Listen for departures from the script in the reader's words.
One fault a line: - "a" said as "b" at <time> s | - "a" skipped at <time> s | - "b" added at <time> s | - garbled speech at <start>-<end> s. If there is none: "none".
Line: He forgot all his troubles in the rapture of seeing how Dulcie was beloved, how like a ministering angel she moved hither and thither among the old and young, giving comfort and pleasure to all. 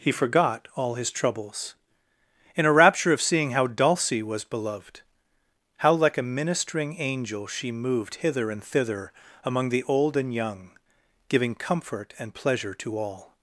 - "the" said as "a" at 2.6 s